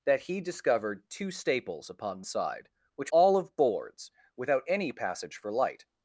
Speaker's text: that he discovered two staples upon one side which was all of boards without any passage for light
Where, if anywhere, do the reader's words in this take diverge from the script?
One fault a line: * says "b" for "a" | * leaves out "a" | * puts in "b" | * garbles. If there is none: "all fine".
* leaves out "one"
* leaves out "was"